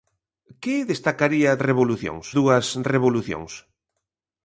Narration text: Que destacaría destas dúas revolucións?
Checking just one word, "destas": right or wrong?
wrong